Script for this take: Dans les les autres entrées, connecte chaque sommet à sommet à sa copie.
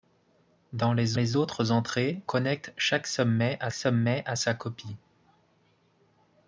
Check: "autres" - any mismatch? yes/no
no